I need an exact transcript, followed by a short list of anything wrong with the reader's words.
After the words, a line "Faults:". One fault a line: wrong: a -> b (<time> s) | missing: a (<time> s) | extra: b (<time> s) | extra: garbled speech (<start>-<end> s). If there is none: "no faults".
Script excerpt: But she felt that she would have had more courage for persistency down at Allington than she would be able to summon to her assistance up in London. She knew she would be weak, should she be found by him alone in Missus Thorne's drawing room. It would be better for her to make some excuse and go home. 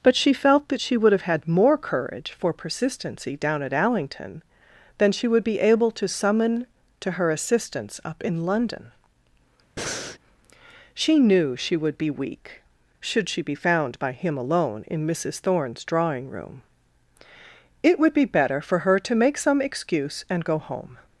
But she felt that she would have had more courage for persistency down at Allington than she would be able to summon to her assistance up in London. She knew she would be weak, should she be found by him alone in Missus Thorne's drawing room. It would be better for her to make some excuse and go home.
Faults:
no faults